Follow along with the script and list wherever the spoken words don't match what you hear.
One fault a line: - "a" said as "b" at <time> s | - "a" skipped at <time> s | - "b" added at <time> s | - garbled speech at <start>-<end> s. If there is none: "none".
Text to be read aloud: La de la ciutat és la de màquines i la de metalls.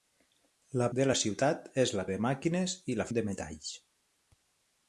none